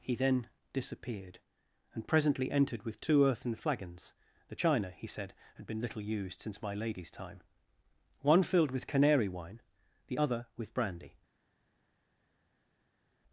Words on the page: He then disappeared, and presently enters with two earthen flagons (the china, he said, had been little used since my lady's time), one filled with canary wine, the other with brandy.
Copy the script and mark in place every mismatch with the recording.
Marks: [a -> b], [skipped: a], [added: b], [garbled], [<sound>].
He then disappeared, and presently [enters -> entered] with two earthen flagons (the china, he said, had been little used since my lady's time), one filled with canary wine, the other with brandy.